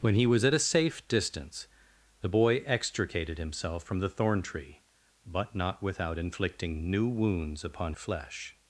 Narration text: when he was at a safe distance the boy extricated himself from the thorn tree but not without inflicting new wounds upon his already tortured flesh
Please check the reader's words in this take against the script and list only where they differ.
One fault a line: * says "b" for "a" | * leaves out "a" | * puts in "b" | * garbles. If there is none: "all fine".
* leaves out "his already tortured"